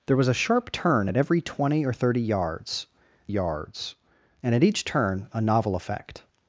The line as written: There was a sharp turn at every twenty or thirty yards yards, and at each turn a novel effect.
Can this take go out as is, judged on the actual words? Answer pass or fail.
pass